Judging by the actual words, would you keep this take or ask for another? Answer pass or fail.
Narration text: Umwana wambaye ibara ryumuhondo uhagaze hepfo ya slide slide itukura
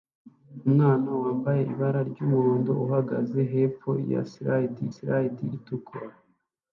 pass